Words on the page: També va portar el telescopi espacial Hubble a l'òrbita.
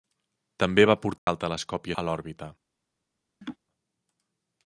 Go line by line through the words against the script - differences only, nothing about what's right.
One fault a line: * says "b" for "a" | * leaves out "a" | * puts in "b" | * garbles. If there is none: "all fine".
* leaves out "espacial Hubble"